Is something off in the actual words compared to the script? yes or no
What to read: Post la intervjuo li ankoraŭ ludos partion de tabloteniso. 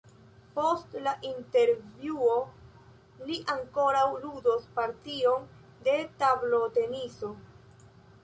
no